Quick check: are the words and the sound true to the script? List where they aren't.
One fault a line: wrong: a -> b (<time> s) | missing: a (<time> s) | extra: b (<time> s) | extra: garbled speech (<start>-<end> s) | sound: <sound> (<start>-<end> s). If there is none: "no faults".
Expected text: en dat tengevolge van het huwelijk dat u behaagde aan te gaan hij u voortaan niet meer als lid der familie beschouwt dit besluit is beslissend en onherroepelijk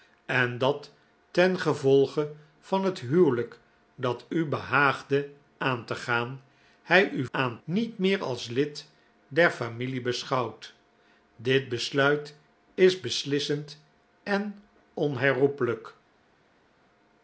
wrong: voortaan -> aan (7.3 s)